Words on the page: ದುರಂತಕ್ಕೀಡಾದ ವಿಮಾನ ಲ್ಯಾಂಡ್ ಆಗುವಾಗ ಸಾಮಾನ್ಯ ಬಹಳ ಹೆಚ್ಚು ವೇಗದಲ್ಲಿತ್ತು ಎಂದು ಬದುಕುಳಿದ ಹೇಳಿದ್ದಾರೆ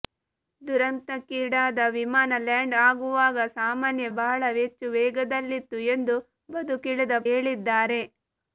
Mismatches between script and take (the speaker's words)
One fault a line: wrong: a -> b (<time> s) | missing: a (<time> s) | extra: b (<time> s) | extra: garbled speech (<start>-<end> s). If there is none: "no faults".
no faults